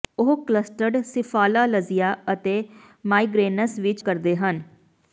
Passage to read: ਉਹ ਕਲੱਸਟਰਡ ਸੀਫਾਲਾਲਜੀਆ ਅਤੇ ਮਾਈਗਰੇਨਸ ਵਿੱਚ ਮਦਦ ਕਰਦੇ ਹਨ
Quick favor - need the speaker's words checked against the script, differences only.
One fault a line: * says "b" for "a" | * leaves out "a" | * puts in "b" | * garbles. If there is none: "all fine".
* leaves out "ਮਦਦ"